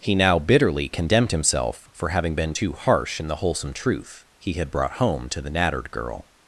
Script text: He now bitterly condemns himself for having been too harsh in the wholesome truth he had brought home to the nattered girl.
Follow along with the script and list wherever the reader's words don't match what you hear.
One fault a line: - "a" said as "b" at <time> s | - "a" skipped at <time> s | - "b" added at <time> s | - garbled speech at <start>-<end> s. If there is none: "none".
- "condemns" said as "condemned" at 0.9 s